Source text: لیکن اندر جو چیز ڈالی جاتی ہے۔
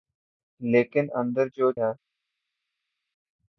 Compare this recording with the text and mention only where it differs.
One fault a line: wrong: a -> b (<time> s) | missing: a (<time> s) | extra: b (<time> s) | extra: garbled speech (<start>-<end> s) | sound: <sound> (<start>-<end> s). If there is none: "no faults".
missing: چیز ڈالی جاتی (1.7 s)